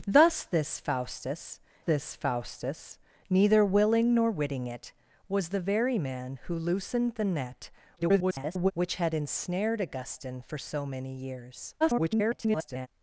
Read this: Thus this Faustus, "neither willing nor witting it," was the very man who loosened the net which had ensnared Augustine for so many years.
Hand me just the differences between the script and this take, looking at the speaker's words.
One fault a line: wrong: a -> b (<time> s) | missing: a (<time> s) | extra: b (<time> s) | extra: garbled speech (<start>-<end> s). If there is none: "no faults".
extra: this Faustus (1.8 s)
extra: garbled speech (8.0-8.7 s)
extra: garbled speech (11.8-12.9 s)